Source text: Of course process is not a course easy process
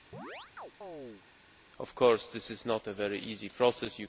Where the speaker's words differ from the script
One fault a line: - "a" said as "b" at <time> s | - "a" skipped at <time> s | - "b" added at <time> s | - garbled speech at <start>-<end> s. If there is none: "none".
- "process" said as "this" at 2.3 s
- "course" said as "very" at 2.9 s